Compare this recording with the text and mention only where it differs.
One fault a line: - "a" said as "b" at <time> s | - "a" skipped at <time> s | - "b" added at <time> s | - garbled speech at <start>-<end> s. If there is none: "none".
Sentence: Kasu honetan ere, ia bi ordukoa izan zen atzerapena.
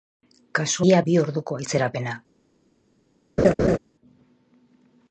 - "honetan ere" skipped at 0.8 s
- "izan zen" skipped at 1.6 s